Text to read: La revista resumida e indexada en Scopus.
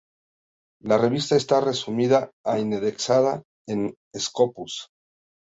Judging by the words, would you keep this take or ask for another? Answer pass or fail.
fail